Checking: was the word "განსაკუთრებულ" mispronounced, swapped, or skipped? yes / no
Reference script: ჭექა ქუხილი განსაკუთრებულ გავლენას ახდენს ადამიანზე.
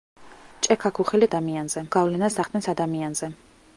yes